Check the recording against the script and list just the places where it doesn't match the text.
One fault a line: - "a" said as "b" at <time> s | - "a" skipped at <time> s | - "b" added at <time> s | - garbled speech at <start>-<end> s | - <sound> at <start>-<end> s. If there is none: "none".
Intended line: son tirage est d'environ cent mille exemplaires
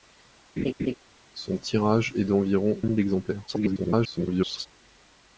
- laugh at 0.6-0.9 s
- "cent" skipped at 2.8 s
- garbled speech at 3.5-4.7 s